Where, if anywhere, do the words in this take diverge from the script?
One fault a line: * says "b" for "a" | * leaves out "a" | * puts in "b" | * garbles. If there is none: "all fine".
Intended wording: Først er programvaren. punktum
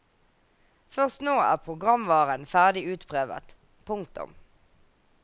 * puts in "nå"
* puts in "ferdig utprøvet"